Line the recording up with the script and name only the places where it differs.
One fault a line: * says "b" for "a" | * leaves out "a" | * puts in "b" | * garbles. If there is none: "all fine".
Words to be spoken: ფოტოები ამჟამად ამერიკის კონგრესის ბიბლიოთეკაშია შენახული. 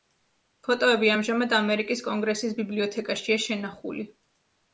all fine